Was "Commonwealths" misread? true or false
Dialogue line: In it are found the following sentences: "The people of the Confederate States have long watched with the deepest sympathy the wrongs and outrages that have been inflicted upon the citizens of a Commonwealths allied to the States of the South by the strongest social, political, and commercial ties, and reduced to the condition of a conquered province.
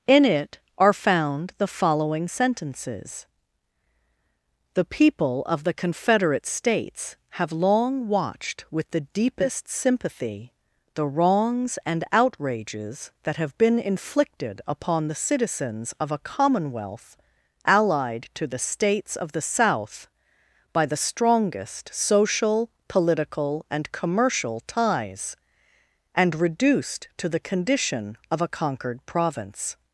true